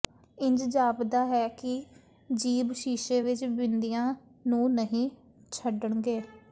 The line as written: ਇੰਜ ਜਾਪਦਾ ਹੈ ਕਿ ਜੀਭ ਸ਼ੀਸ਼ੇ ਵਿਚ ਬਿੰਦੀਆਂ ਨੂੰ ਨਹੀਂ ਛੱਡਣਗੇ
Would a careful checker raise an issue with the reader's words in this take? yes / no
no